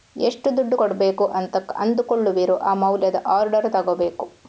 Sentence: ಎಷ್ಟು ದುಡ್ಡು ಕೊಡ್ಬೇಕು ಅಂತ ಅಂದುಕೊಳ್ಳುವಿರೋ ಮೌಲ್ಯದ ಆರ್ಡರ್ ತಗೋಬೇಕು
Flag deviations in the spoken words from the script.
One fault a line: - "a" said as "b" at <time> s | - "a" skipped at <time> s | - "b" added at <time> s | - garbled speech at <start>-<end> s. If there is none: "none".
- "ಆ" added at 2.6 s